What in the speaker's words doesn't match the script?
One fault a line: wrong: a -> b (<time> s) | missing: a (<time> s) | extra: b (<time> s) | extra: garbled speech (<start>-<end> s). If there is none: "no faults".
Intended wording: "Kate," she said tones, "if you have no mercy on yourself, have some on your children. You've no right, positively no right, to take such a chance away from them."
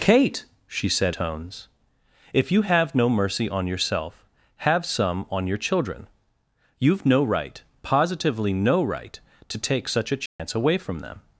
no faults